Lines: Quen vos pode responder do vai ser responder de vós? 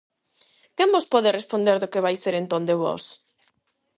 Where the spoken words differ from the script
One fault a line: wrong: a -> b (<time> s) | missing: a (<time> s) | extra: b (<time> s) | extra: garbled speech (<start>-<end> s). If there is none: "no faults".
extra: que (1.9 s)
wrong: responder -> entón (2.4 s)